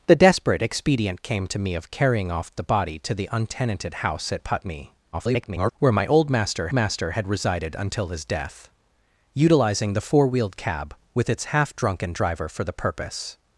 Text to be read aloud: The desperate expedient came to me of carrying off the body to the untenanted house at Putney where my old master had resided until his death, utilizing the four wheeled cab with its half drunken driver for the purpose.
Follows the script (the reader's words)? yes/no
no